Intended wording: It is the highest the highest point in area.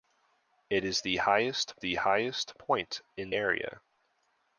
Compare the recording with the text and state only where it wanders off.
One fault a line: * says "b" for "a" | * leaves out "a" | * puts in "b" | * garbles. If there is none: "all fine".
all fine